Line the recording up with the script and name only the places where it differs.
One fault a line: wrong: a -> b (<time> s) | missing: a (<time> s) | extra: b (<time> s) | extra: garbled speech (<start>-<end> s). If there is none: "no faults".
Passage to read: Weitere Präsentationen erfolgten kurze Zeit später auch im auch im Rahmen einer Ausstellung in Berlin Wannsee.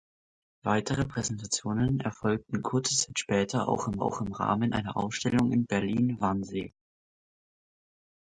no faults